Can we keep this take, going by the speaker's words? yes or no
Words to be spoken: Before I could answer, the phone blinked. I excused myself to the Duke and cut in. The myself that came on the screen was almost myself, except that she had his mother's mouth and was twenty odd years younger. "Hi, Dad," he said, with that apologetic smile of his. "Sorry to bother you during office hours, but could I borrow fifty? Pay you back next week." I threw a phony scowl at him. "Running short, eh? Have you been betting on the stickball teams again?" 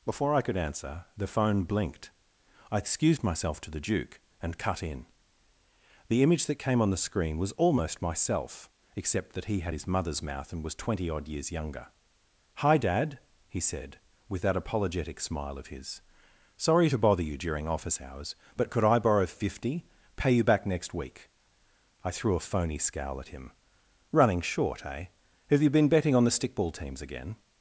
no